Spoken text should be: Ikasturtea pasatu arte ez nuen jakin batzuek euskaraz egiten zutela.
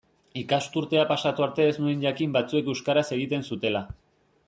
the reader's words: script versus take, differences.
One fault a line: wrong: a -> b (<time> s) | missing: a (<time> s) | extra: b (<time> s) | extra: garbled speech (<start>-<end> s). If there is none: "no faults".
no faults